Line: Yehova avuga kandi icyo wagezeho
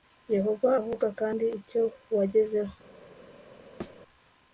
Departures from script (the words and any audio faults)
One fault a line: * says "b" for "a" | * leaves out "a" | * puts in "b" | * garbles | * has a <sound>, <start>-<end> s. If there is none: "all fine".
* has a thud, 3.8-4.0 s